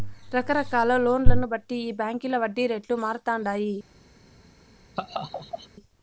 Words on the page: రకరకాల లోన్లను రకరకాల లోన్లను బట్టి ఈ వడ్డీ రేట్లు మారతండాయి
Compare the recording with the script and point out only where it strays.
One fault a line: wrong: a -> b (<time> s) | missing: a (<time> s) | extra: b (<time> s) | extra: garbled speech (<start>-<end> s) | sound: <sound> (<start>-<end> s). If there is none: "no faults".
missing: రకరకాల లోన్లను (1.5 s)
extra: బాంకీల (1.9 s)
sound: laugh (5.0-5.7 s)